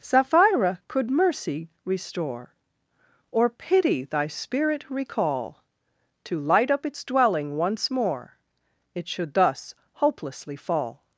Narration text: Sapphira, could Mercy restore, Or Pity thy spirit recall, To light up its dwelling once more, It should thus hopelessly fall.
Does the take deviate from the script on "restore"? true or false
false